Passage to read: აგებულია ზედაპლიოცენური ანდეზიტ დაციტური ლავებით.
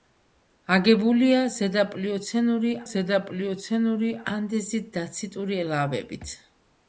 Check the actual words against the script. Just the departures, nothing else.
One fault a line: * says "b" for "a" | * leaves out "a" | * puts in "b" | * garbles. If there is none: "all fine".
* puts in "ზედაპლიოცენური"